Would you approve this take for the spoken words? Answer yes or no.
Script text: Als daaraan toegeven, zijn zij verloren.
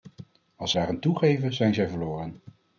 yes